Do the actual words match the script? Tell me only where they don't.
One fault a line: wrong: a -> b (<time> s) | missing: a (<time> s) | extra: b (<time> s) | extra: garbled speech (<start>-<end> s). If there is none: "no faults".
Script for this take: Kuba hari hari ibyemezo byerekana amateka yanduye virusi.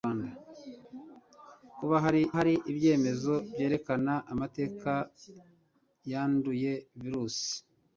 no faults